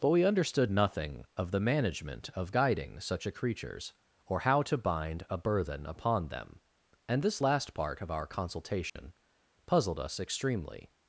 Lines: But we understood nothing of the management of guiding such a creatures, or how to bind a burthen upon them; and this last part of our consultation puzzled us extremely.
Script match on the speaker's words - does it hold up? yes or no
yes